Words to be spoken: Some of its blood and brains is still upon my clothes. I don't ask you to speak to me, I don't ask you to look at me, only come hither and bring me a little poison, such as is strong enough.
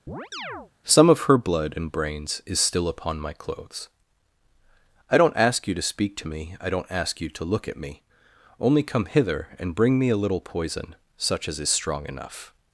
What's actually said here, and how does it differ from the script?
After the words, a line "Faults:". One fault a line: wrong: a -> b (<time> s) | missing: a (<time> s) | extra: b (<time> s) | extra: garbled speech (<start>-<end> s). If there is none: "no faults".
Some of her blood and brains is still upon my clothes. I don't ask you to speak to me, I don't ask you to look at me, only come hither and bring me a little poison, such as is strong enough.
Faults:
wrong: its -> her (1.2 s)